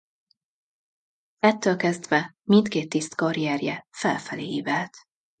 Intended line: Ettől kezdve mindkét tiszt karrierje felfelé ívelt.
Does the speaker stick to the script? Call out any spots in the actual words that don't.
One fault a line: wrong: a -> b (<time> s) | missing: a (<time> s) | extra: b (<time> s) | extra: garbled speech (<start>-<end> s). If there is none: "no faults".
no faults